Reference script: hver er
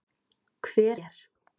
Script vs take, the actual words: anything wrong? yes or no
no